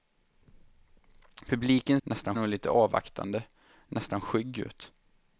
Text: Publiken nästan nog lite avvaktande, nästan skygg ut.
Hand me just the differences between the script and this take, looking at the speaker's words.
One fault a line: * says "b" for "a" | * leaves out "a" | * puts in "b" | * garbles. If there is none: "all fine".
all fine